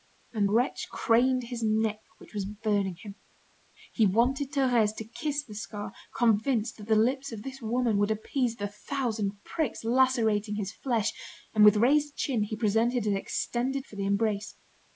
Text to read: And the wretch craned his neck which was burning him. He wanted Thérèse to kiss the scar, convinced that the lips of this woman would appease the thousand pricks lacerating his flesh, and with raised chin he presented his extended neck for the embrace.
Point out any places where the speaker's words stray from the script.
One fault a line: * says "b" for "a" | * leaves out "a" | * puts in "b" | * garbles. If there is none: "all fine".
* leaves out "the"
* leaves out "neck"